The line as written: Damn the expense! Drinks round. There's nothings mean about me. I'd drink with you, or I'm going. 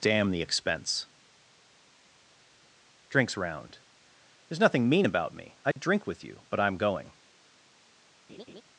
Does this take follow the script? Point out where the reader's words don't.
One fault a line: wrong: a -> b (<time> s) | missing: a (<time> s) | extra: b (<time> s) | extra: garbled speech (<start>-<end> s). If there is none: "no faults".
wrong: nothings -> nothing (4.6 s)
wrong: or -> but (6.5 s)